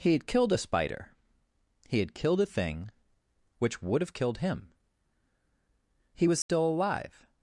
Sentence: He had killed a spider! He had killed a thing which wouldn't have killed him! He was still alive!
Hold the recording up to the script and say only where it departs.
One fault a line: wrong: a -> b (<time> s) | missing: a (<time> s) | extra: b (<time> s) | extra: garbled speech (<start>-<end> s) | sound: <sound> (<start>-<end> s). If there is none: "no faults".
wrong: wouldn't -> would (3.8 s)
sound: dropout (6.4-6.5 s)